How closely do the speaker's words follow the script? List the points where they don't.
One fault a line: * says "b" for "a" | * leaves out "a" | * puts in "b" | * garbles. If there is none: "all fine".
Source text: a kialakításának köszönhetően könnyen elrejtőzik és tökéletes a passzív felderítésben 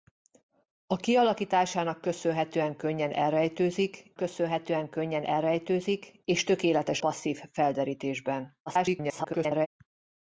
* puts in "köszönhetően könnyen elrejtőzik"
* leaves out "a"
* garbles